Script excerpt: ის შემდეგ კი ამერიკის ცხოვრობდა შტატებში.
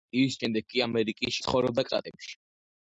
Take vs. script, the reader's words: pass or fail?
pass